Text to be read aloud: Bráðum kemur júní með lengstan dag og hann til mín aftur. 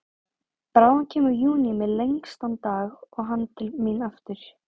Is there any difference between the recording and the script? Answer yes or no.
no